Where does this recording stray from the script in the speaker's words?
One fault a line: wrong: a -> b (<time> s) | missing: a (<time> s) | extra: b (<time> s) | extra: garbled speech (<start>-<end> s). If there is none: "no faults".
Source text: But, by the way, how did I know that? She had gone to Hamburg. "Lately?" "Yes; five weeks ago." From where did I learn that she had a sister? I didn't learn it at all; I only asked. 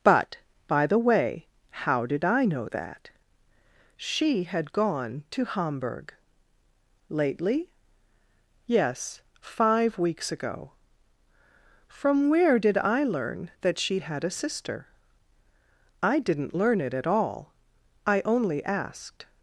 no faults